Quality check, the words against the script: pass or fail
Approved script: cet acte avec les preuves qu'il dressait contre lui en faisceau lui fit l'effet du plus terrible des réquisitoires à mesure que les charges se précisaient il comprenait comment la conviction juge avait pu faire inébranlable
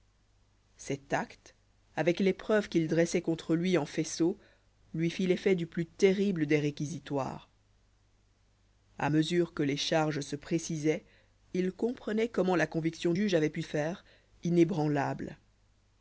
pass